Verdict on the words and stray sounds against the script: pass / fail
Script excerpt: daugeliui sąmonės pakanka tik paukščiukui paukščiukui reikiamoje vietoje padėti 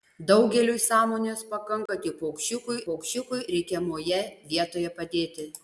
fail